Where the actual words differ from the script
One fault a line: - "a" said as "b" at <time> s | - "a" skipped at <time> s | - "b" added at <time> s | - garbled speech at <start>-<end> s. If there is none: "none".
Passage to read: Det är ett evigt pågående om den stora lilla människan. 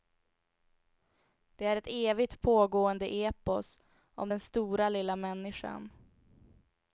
- "epos" added at 3.1 s